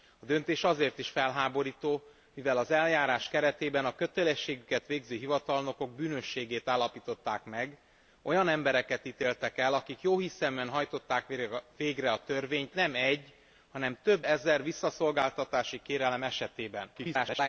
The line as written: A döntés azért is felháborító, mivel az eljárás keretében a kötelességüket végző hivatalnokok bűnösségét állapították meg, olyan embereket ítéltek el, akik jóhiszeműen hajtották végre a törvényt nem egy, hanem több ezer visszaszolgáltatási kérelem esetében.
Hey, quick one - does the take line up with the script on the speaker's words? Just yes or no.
no